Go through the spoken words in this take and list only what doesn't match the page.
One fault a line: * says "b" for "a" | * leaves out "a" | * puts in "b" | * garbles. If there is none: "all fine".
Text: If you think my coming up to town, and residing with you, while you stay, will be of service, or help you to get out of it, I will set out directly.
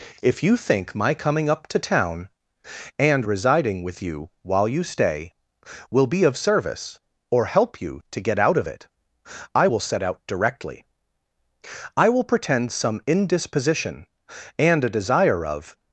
* puts in "I will pretend some indisposition and a desire of"